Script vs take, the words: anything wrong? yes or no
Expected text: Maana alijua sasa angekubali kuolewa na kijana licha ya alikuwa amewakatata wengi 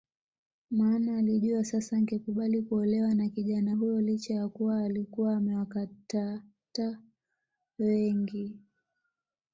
yes